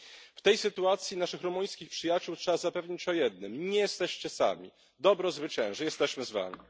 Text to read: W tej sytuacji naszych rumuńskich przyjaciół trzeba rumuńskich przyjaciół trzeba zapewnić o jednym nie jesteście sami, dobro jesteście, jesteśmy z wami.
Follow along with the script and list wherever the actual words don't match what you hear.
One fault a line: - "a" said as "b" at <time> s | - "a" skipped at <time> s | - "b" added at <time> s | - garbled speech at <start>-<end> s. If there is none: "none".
- "rumuńskich przyjaciół trzeba" skipped at 2.6 s
- "jesteście" said as "zwycięży" at 5.3 s